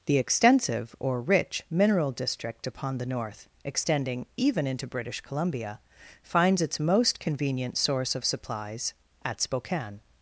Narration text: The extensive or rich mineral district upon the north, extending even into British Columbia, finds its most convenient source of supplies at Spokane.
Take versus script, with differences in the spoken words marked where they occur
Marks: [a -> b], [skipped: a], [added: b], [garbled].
The extensive or rich mineral district upon the north, extending even into British Columbia, finds its most convenient source of supplies at Spokane.